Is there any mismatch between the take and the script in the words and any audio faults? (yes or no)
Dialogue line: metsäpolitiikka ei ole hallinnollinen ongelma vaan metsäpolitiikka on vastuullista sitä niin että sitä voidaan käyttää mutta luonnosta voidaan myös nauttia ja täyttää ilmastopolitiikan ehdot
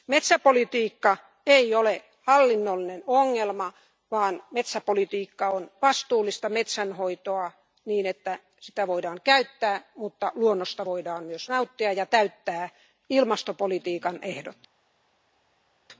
yes